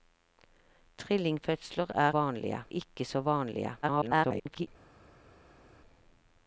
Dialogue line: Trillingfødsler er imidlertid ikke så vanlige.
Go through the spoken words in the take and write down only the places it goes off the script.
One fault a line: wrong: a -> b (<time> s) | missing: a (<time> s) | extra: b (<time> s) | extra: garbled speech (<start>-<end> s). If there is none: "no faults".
wrong: imidlertid -> vanlige (2.1 s)
extra: garbled speech (3.8-4.7 s)